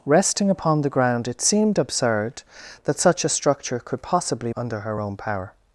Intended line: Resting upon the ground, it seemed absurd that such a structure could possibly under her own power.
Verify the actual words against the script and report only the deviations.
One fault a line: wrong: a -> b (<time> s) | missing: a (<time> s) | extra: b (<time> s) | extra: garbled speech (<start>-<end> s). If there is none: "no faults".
no faults